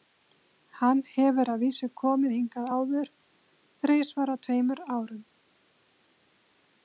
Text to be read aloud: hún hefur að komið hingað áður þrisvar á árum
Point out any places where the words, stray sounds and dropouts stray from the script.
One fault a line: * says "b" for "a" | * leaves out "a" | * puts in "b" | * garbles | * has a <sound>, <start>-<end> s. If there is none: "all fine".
* says "hann" for "hún"
* puts in "vísu"
* puts in "tveimur"